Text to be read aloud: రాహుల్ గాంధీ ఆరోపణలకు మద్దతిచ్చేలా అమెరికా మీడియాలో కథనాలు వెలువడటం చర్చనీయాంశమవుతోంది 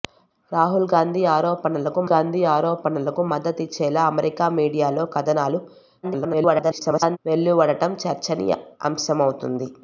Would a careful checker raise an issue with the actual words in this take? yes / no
yes